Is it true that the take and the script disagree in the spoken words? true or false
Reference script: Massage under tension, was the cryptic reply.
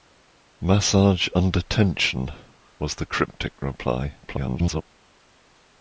true